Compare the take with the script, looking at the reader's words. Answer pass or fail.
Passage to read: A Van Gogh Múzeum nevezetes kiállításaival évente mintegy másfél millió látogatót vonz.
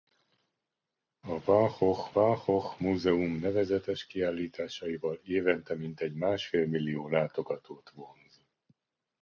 fail